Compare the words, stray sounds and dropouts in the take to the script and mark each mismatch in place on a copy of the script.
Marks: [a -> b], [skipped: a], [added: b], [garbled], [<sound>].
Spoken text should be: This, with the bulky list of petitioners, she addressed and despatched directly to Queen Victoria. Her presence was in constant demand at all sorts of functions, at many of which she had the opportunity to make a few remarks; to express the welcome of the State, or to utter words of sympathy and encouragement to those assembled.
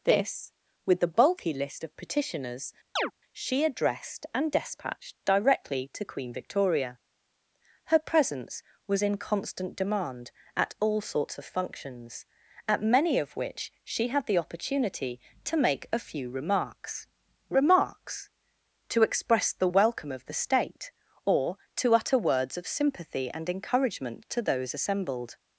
This, with the bulky list of petitioners, [chirp] she addressed and despatched directly to Queen Victoria. Her presence was in constant demand at all sorts of functions, at many of which she had the opportunity to make a few remarks; [added: remarks] to express the welcome of the State, or to utter words of sympathy and encouragement to those assembled.